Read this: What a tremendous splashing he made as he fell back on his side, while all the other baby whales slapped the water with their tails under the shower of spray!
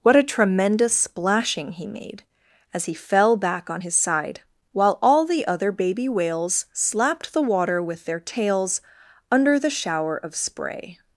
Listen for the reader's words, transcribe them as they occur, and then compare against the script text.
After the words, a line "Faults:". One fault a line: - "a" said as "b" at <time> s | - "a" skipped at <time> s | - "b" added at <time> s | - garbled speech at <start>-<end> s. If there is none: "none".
What a tremendous splashing he made as he fell back on his side, while all the other baby whales slapped the water with their tails under the shower of spray!
Faults:
none